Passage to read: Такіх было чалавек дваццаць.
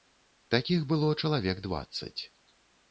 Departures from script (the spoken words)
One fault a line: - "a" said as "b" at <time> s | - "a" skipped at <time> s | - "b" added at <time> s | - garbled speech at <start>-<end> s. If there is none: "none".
none